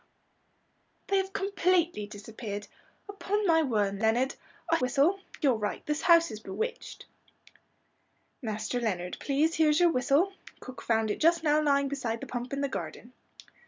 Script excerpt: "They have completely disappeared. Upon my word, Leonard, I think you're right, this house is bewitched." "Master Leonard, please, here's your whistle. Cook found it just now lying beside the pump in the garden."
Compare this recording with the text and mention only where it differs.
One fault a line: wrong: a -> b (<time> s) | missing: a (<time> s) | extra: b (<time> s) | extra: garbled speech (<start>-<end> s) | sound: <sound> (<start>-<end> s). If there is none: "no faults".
wrong: think -> whistle (4.8 s)